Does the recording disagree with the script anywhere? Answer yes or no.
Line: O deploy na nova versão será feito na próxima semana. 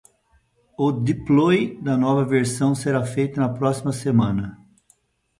yes